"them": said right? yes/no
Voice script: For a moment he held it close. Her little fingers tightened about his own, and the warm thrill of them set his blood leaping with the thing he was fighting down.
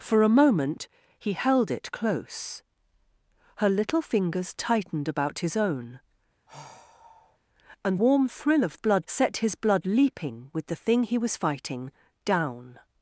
no